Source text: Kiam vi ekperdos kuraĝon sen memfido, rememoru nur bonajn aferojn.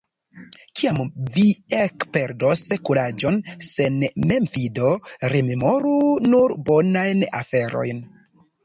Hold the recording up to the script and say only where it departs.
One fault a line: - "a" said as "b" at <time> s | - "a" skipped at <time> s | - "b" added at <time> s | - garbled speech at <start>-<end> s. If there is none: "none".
none